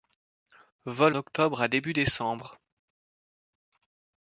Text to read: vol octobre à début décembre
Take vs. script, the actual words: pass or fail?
pass